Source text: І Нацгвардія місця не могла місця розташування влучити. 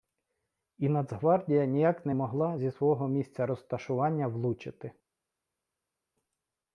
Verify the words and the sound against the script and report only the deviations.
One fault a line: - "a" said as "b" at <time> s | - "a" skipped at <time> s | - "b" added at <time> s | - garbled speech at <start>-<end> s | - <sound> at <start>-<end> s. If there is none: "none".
- "місця" said as "ніяк" at 1.6 s
- "зі свого" added at 2.6 s